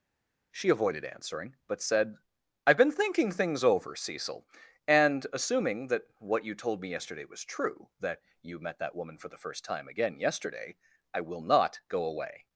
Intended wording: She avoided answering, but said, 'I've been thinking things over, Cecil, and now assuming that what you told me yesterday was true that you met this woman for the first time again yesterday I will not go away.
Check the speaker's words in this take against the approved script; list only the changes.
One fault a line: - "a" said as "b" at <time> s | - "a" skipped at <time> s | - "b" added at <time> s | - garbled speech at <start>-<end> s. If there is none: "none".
- "now" skipped at 5.3 s
- "this" said as "that" at 8.8 s